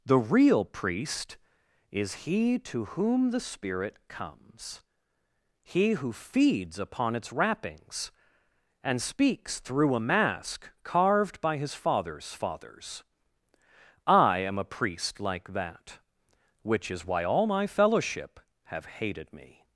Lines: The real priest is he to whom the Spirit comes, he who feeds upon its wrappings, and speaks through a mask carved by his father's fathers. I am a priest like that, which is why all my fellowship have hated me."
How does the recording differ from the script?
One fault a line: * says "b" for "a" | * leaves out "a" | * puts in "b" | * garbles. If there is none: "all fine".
all fine